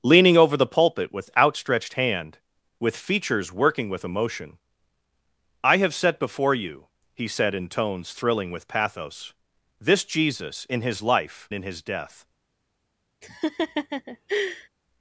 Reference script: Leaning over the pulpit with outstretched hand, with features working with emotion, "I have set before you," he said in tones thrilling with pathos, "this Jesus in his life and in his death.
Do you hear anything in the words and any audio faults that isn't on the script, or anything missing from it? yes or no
yes